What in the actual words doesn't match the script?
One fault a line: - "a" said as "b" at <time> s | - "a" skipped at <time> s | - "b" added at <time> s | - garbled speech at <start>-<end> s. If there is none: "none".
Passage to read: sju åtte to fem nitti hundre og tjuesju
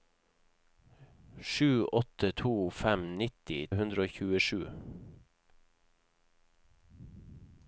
none